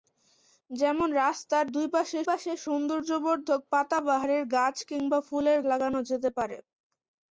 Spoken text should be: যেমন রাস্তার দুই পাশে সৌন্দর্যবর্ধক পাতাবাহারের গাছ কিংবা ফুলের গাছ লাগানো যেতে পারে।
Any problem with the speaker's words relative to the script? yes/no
yes